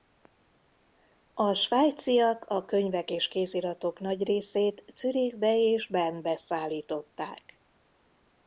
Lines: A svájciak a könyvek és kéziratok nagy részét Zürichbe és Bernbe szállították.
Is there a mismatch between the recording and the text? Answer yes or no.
no